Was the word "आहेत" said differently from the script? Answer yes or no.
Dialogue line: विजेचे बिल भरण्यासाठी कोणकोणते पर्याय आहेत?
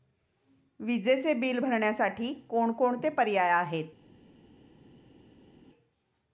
no